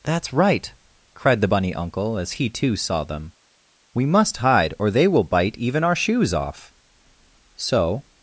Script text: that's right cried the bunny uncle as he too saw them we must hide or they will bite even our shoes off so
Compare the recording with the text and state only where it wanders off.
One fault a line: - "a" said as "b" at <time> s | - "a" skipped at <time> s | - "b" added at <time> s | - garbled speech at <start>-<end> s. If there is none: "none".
none